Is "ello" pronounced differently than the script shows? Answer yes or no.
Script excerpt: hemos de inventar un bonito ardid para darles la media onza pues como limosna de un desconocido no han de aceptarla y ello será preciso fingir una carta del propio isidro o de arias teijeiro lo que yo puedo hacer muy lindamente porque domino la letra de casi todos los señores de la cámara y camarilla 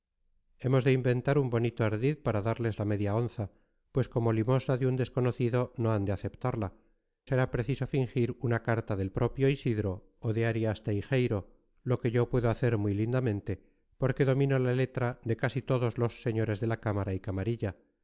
yes